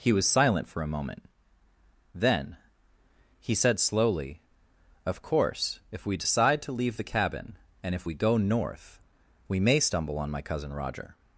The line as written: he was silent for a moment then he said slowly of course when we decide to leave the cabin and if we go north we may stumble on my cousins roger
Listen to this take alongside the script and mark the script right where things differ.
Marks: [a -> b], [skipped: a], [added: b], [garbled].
he was silent for a moment then he said slowly of course [when -> if] we decide to leave the cabin and if we go north we may stumble on my [cousins -> cousin] roger